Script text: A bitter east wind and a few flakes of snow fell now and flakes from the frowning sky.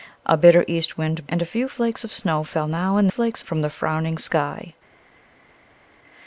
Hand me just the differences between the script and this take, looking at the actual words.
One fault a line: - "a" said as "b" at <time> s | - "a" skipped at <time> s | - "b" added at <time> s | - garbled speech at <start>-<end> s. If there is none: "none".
none